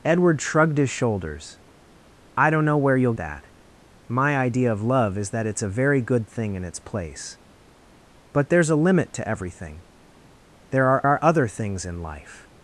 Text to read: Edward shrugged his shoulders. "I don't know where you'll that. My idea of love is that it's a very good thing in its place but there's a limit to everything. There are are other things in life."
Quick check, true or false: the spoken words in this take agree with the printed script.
true